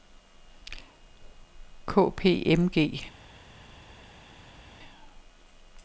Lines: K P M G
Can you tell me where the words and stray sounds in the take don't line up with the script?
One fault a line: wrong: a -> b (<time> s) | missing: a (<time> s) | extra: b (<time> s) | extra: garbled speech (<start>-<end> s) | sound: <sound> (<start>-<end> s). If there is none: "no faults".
no faults